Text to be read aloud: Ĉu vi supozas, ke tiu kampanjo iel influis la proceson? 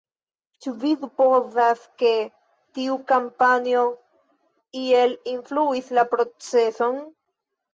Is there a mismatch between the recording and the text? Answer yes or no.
no